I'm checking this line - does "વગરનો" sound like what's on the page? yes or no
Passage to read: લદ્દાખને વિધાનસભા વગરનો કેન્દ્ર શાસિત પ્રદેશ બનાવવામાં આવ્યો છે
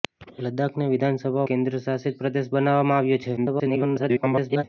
no